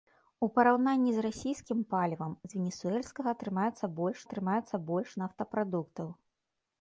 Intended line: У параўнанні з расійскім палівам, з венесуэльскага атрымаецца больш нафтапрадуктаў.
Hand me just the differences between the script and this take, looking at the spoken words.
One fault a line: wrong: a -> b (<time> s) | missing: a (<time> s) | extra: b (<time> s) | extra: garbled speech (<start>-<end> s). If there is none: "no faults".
extra: атрымаецца больш (4.3 s)